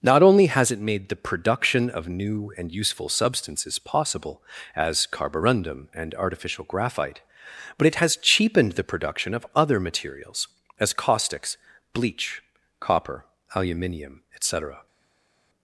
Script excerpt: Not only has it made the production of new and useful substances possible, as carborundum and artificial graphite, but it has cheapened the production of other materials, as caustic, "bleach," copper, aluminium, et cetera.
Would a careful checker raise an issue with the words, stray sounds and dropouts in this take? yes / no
yes